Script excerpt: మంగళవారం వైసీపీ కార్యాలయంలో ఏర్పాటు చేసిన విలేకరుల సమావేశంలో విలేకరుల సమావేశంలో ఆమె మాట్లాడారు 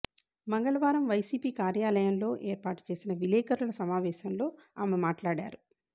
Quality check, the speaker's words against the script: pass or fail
fail